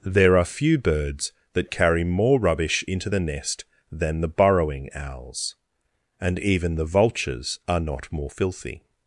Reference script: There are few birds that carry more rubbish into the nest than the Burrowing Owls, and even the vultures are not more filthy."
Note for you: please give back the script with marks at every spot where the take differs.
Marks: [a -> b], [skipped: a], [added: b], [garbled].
There are few birds that carry more rubbish into the nest than the Burrowing Owls, and even the vultures are not more filthy."